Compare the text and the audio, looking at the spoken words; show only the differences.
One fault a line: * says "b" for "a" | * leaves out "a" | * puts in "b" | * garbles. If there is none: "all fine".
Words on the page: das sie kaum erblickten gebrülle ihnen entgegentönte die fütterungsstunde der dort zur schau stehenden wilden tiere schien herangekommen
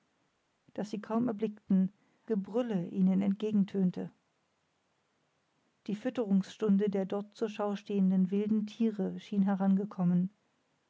all fine